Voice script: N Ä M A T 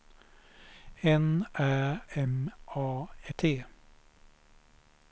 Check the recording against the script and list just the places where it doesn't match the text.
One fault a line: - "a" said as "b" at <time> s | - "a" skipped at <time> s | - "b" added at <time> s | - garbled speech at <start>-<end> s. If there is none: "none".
none